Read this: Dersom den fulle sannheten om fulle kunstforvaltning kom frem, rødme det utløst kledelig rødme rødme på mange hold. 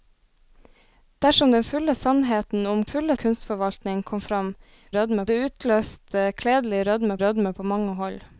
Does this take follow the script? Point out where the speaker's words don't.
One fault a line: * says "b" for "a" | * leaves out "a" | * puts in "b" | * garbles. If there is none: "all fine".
all fine